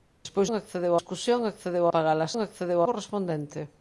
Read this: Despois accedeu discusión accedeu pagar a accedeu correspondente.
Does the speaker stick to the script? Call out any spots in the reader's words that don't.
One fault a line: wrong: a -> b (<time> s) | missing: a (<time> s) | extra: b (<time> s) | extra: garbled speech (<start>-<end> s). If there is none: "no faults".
no faults